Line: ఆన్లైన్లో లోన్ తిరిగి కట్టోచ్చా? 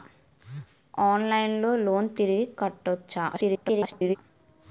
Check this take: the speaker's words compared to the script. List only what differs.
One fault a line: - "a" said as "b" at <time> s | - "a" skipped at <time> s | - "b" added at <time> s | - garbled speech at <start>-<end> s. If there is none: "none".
- garbled speech at 3.3-4.2 s